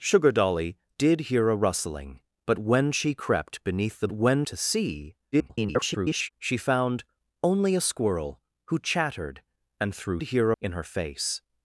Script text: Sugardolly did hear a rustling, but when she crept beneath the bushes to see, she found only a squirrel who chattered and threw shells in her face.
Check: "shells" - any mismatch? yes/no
yes